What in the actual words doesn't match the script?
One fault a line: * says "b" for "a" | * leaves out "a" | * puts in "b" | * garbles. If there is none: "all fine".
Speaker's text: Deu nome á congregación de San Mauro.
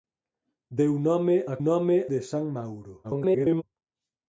* says "nome" for "congregación"
* garbles